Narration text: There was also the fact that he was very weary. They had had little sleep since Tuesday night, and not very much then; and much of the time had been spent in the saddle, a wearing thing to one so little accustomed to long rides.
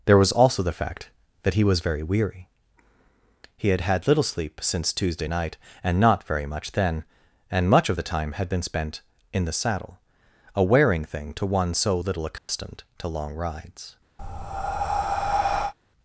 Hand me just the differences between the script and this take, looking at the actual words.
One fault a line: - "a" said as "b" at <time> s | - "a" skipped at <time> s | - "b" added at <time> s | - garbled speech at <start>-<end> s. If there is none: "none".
- "They" said as "He" at 3.6 s